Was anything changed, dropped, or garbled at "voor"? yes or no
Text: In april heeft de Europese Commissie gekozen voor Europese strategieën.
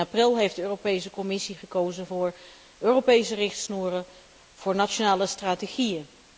no